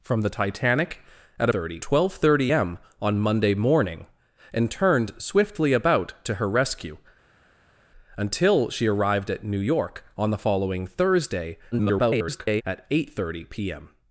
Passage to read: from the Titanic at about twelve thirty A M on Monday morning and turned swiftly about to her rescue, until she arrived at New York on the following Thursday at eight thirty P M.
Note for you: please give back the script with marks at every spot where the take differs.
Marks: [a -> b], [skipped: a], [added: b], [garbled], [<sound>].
from the Titanic at [about -> thirty] twelve thirty [skipped: A] M on Monday morning and turned swiftly about to her rescue, until she arrived at New York on the following Thursday [garbled] at eight thirty P M.